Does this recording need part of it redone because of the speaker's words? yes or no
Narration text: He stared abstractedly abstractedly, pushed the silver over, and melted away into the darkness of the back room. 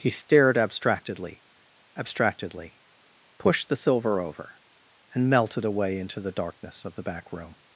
no